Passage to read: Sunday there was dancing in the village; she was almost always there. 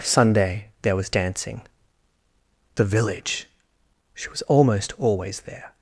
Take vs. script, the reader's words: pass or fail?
fail